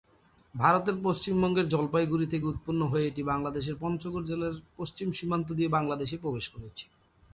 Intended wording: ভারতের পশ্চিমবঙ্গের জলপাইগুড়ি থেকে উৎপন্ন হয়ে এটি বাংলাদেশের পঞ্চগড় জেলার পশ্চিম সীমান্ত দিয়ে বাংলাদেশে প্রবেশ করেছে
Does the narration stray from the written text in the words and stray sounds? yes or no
no